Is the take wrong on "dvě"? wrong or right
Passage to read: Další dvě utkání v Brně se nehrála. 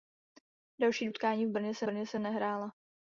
wrong